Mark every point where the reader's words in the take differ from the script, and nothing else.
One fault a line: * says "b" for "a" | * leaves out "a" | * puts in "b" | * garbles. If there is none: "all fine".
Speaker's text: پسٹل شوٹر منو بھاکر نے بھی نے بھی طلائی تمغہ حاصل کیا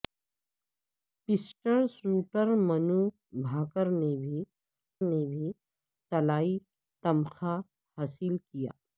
all fine